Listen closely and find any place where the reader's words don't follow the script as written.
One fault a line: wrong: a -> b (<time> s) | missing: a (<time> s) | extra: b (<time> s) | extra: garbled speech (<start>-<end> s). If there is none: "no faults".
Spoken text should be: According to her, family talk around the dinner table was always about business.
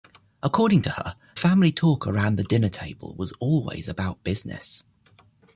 no faults